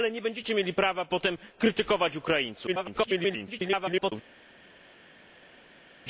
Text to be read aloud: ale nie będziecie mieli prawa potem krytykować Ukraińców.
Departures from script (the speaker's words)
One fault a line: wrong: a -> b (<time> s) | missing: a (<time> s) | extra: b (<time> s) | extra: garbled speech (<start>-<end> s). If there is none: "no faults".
extra: garbled speech (2.7-4.1 s)